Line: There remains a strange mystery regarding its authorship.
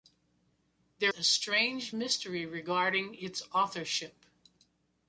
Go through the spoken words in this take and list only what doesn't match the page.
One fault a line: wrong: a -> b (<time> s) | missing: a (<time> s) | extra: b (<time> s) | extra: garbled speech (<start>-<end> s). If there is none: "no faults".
missing: remains (1.1 s)